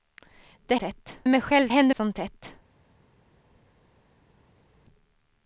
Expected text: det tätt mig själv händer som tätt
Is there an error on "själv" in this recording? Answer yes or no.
no